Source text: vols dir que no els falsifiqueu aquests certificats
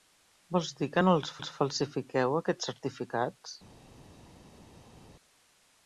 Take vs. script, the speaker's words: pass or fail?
fail